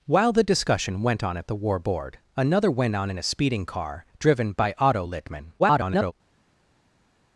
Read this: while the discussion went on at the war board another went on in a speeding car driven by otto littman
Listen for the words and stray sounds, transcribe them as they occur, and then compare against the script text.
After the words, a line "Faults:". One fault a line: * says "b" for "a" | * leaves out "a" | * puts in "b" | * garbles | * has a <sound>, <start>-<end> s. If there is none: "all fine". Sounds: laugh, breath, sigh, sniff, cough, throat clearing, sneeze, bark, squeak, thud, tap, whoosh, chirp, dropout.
while the discussion went on at the war board another went on in a speeding car driven by otto littman [garbled]
Faults:
* garbles